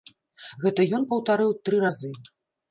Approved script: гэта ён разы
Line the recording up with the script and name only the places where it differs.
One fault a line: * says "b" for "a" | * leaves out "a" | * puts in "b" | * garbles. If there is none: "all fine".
* puts in "паўтарыў тры"